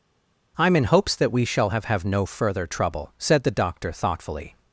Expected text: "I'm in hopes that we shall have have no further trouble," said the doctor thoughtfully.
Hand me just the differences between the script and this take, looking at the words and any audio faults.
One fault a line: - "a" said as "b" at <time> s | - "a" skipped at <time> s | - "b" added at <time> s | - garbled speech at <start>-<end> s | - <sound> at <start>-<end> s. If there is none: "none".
none